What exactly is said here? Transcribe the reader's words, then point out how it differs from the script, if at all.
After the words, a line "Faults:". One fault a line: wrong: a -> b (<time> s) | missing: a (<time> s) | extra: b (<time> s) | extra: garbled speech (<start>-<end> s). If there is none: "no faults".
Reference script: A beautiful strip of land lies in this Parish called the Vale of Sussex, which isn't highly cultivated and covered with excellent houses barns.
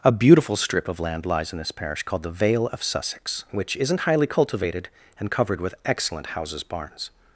A beautiful strip of land lies in this Parish called the Vale of Sussex, which isn't highly cultivated and covered with excellent houses barns.
Faults:
no faults